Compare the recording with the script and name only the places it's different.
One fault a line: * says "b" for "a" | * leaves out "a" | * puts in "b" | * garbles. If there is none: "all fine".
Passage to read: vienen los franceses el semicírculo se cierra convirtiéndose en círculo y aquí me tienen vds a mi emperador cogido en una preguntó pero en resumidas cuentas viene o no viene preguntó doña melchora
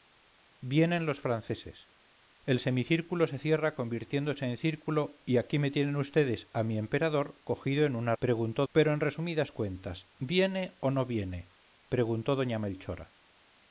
all fine